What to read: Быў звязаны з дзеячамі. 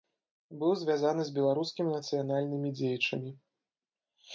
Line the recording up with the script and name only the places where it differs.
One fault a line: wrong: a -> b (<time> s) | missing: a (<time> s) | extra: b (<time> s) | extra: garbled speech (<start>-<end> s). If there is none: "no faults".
extra: беларускімі нацыянальнымі (1.4 s)